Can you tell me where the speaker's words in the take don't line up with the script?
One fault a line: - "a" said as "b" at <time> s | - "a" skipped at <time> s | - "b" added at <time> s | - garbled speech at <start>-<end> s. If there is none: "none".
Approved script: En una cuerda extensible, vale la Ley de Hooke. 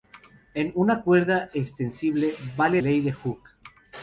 - "la" skipped at 2.8 s